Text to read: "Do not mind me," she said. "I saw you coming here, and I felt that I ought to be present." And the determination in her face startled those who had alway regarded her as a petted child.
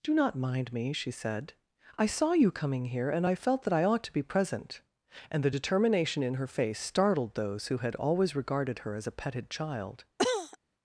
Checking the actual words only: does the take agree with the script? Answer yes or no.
no